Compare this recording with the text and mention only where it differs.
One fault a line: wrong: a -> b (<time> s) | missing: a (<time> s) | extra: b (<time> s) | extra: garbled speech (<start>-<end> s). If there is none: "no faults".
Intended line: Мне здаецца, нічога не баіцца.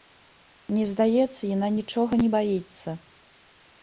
extra: яна (1.6 s)